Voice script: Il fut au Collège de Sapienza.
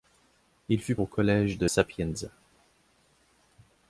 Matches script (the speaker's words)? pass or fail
pass